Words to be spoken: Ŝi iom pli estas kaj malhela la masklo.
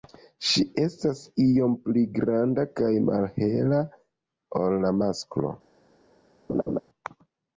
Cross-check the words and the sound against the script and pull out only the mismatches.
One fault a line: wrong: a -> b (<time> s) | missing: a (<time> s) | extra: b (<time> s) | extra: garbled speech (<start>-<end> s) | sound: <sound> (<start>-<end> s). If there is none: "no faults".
extra: estas (0.8 s)
wrong: estas -> granda (2.1 s)
extra: ol (4.6 s)
sound: laugh (6.5-6.8 s)